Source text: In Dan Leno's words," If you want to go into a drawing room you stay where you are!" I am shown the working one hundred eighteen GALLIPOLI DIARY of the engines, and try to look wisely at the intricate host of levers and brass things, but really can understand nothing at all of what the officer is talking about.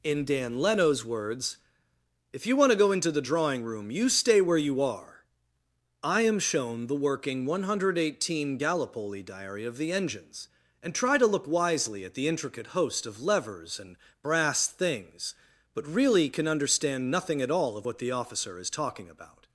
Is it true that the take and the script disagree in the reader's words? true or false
true